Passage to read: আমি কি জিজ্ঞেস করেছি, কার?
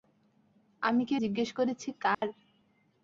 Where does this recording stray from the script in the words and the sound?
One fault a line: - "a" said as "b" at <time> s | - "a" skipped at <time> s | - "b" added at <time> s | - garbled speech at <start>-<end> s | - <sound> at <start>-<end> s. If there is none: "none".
- dropout at 2.1-2.2 s